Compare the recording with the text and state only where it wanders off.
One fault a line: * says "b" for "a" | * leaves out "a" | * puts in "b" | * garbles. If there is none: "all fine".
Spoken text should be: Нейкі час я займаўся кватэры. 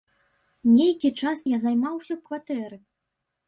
all fine